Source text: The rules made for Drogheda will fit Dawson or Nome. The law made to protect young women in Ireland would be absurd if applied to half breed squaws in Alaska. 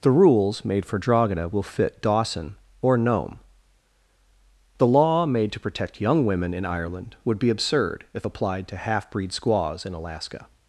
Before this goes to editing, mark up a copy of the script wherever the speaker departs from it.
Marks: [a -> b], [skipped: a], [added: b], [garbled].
The rules made for Drogheda will fit Dawson or Nome. The law made to protect young women in Ireland would be absurd if applied to half breed squaws in Alaska.